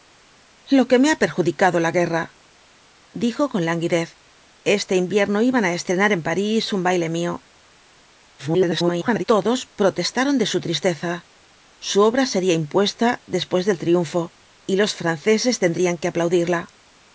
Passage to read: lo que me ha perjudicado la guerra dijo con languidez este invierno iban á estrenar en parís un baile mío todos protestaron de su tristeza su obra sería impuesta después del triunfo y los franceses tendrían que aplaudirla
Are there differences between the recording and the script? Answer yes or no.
yes